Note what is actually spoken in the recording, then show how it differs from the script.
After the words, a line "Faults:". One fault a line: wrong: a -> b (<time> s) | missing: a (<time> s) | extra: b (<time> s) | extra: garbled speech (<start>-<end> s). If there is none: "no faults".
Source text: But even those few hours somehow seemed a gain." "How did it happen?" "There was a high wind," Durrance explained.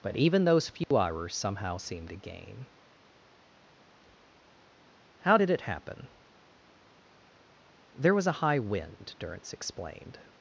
But even those few hours somehow seemed a gain." "How did it happen?" "There was a high wind," Durrance explained.
Faults:
no faults